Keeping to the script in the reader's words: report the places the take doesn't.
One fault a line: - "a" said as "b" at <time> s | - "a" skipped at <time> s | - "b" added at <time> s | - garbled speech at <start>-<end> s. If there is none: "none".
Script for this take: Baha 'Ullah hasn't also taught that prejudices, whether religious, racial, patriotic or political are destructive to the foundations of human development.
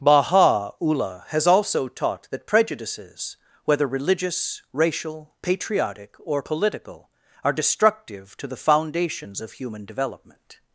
- "hasn't" said as "has" at 1.3 s